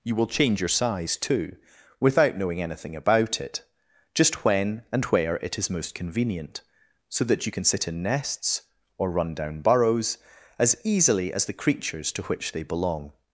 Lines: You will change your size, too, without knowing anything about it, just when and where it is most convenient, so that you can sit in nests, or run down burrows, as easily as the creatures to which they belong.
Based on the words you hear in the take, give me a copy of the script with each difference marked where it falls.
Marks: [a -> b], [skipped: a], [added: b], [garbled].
You will change your size, too, without knowing anything about it, just when and where it is most convenient, so that you can sit in nests, or run down burrows, as easily as the creatures to which they belong.